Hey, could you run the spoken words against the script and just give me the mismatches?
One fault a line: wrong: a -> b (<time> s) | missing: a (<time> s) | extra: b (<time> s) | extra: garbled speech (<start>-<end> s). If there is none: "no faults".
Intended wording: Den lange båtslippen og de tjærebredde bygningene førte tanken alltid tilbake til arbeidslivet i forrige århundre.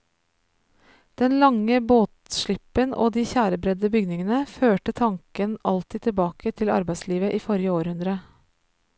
no faults